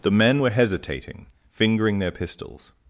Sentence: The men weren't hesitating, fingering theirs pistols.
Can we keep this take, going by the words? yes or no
no